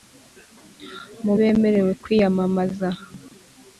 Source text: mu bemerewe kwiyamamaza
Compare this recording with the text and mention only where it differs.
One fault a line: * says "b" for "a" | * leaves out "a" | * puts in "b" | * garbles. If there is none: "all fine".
all fine